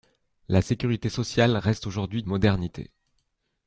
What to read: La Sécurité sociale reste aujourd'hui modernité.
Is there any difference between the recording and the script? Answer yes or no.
no